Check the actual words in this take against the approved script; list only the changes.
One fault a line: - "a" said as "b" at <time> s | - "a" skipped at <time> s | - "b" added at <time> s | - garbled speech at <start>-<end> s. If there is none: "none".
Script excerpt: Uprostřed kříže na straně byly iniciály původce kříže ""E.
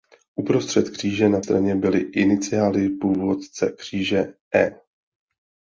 none